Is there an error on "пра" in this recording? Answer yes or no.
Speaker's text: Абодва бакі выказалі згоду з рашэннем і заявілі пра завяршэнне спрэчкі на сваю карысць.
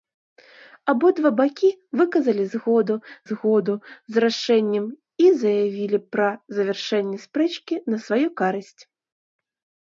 no